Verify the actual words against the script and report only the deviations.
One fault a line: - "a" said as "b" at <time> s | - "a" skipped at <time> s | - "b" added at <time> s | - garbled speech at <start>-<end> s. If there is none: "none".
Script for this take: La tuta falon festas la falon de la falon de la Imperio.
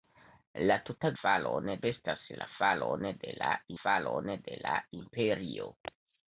none